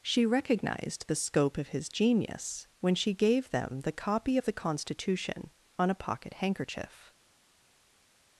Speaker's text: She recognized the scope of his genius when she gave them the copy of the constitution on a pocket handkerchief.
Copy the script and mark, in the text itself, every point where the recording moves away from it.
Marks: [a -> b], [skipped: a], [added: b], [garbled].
She recognized the scope of his genius when she gave them the copy of the constitution on a pocket handkerchief.